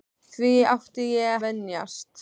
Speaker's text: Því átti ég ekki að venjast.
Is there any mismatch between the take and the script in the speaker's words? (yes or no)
yes